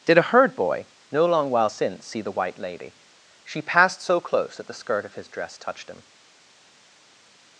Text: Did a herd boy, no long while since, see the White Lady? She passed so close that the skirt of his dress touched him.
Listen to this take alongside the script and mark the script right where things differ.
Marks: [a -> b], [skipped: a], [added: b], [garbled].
Did a herd boy, no long while since, see the White Lady? She passed so close that the skirt of his dress touched him.